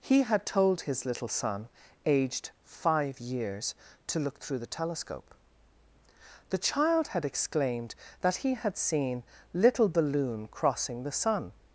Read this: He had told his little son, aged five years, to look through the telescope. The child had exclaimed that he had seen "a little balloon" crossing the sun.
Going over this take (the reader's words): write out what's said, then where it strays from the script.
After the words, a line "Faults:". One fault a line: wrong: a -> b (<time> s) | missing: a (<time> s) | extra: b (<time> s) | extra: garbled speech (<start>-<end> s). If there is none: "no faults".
He had told his little son, aged five years, to look through the telescope. The child had exclaimed that he had seen "little balloon" crossing the sun.
Faults:
missing: a (9.2 s)